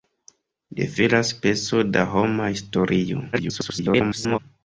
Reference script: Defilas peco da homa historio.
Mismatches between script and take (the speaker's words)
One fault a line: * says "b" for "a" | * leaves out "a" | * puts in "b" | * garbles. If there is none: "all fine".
* garbles